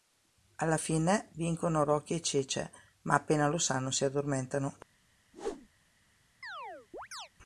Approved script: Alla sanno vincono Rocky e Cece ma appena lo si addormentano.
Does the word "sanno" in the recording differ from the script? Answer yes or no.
yes